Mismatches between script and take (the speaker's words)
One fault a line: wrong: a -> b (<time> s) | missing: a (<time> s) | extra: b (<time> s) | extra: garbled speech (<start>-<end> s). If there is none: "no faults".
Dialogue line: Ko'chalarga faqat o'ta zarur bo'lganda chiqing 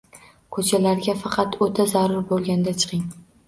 no faults